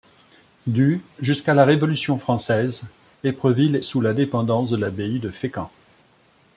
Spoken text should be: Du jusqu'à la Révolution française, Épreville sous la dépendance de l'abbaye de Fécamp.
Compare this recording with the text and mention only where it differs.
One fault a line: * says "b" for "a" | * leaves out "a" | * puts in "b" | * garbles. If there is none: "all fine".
all fine